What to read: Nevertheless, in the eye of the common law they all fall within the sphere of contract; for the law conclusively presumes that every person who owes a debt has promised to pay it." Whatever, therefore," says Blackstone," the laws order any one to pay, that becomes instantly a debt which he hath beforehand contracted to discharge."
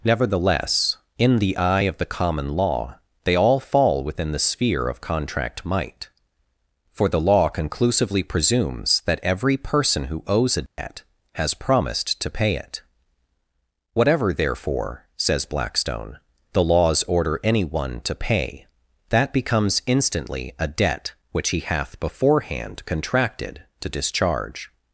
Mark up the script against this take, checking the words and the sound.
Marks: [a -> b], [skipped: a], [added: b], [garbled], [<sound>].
Nevertheless, in the eye of the common law they all fall within the sphere of contract; [added: might] for the law conclusively presumes that every person who owes a debt [dropout] has promised to pay it." Whatever, therefore," says Blackstone," the laws order any one to pay, that becomes instantly a debt which he hath beforehand contracted to discharge."